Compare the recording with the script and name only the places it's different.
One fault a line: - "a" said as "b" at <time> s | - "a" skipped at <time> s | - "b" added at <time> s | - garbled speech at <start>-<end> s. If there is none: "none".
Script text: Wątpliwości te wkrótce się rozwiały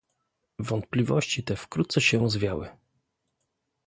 none